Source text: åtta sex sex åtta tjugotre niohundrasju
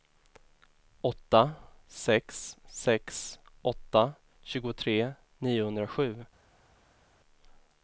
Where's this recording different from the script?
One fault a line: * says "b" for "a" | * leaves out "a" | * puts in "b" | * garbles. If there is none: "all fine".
all fine